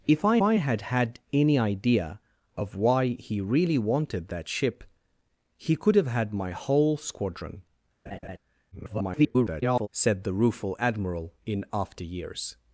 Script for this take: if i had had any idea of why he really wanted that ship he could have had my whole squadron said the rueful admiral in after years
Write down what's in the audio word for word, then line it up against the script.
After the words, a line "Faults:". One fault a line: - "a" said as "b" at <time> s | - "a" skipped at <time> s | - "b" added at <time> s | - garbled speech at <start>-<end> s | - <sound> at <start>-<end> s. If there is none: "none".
if i i had had any idea of why he really wanted that ship he could have had my whole squadron [garbled] said the rueful admiral in after years
Faults:
- "i" added at 0.4 s
- laugh at 8.1-8.4 s
- garbled speech at 8.7-9.9 s